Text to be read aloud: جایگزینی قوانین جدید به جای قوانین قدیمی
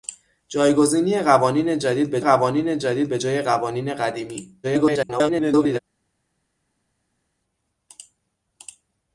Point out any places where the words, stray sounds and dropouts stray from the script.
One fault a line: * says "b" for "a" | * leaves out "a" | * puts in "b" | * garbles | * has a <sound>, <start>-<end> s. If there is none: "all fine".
* puts in "قوانین جدید به"
* garbles